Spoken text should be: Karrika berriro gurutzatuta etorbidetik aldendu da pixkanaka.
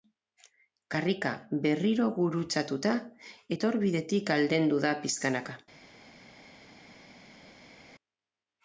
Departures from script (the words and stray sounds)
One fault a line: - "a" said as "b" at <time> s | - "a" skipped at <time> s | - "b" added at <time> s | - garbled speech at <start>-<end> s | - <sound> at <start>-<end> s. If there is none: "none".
none